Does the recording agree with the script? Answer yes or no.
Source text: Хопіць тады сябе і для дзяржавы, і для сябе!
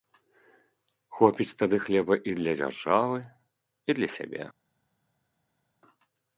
no